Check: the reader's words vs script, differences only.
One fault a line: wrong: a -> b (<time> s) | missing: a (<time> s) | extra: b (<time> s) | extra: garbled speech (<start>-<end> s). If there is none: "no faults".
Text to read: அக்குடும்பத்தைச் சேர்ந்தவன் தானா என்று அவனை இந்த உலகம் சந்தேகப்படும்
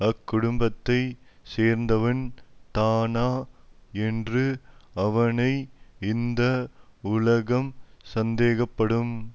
no faults